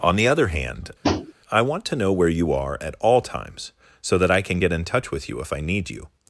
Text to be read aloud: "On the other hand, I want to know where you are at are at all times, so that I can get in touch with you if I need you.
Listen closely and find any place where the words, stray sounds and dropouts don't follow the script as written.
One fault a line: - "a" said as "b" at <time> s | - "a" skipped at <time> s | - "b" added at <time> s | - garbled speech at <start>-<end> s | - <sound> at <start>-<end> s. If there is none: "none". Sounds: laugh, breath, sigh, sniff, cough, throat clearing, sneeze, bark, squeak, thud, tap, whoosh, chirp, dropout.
- tap at 1.0-1.3 s
- "are at" skipped at 2.9 s